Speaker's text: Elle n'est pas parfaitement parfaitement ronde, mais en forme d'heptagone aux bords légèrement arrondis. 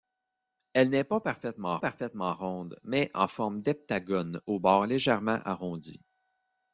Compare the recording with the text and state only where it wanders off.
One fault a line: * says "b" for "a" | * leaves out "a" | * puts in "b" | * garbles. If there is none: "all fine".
all fine